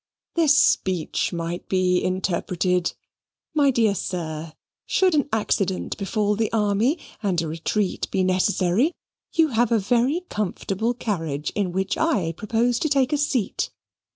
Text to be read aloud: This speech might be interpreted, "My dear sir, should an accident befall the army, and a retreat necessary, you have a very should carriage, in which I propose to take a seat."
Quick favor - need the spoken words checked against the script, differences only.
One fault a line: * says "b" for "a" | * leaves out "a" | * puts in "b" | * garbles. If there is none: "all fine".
* puts in "be"
* says "comfortable" for "should"